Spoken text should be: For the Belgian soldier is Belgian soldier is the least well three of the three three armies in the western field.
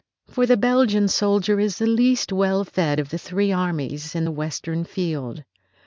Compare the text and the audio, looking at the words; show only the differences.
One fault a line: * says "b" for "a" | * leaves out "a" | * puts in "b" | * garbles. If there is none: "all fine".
* leaves out "Belgian soldier is"
* says "fed" for "three"
* leaves out "three"